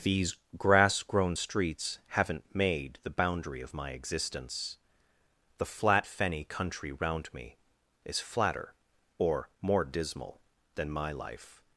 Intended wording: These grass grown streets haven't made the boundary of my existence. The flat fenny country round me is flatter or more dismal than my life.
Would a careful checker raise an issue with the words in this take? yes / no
no